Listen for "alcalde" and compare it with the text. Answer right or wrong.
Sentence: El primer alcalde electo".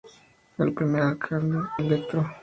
right